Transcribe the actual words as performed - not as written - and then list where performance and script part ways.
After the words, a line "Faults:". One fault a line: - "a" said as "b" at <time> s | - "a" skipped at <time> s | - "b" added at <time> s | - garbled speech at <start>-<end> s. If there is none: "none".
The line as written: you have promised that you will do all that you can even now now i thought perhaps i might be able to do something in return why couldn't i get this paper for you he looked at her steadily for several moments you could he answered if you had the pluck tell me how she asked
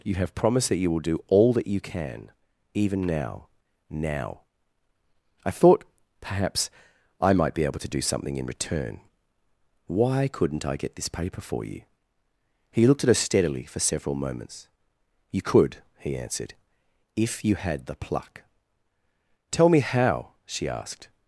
you have promised that you will do all that you can even now now i thought perhaps i might be able to do something in return why couldn't i get this paper for you he looked at her steadily for several moments you could he answered if you had the pluck tell me how she asked
Faults:
none